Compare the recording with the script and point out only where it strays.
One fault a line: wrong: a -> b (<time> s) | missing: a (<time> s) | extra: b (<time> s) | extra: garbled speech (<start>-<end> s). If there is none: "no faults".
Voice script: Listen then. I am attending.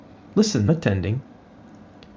missing: then I am (0.7 s)